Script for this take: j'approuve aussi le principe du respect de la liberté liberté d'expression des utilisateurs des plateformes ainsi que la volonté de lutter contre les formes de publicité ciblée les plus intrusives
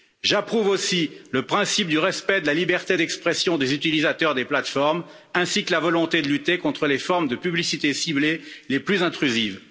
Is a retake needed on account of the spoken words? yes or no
yes